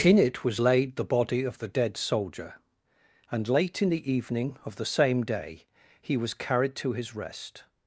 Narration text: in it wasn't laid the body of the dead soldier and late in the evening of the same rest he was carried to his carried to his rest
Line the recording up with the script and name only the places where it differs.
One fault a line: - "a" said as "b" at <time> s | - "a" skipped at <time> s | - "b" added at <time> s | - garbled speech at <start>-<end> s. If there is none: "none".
- "wasn't" said as "was" at 0.4 s
- "rest" said as "day" at 5.2 s
- "carried to his" skipped at 7.2 s